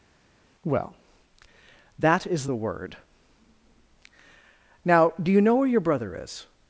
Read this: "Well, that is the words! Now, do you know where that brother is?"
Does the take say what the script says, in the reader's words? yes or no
no